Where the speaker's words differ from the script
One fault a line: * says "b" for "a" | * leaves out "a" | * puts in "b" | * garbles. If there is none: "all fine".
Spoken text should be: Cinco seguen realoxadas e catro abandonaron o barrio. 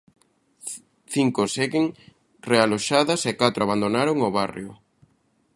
all fine